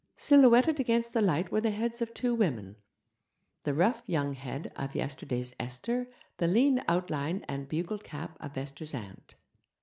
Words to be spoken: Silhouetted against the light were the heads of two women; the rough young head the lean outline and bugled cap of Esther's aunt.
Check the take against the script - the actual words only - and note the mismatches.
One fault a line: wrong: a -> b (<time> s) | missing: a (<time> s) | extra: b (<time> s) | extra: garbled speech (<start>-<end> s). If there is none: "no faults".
extra: of yesterday's Esther (4.8 s)